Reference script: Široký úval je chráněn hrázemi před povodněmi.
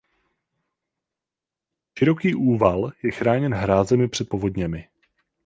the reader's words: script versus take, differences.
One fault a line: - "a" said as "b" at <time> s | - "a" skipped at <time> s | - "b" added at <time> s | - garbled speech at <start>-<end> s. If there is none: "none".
none